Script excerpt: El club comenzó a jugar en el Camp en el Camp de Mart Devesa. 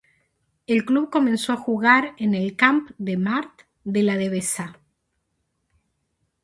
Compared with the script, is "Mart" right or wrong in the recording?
wrong